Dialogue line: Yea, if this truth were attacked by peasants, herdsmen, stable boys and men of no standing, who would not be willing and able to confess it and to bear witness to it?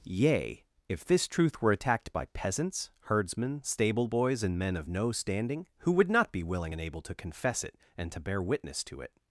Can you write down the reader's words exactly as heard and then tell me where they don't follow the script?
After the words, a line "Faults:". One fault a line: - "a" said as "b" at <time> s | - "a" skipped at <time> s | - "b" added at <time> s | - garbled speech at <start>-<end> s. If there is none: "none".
Yea, if this truth were attacked by peasants, herdsmen, stable boys and men of no standing, who would not be willing and able to confess it and to bear witness to it?
Faults:
none